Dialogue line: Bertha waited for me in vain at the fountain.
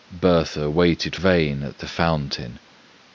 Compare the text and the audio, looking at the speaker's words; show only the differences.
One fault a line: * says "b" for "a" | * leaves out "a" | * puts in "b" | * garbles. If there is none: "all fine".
* leaves out "for me in"